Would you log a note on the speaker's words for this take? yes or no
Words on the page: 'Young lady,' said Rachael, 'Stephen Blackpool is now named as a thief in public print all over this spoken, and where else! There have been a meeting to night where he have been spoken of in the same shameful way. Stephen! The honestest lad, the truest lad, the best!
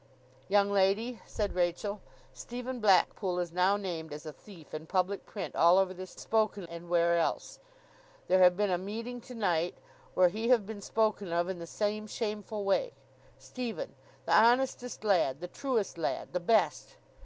no